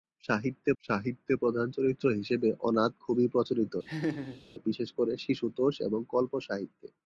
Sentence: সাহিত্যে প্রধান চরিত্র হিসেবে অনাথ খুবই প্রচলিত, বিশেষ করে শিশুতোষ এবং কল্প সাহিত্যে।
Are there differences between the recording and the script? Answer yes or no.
yes